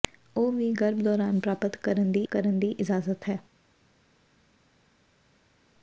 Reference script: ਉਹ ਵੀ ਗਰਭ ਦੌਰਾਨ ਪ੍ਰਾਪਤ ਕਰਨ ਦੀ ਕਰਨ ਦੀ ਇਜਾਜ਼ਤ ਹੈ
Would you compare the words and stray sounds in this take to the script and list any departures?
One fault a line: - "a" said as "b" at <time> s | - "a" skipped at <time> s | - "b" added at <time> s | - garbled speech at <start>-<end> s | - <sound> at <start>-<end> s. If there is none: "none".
none